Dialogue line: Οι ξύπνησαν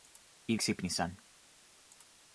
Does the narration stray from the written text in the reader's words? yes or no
no